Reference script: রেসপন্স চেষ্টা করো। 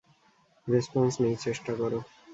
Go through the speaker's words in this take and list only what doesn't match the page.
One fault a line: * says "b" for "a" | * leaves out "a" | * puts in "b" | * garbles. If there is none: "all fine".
* puts in "নেই"